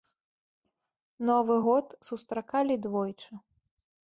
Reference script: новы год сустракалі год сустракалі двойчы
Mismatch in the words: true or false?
true